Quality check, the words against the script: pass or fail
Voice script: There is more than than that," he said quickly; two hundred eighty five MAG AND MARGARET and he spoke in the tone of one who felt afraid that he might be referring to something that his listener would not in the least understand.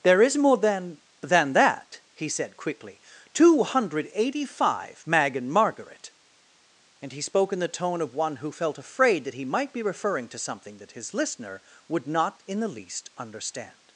pass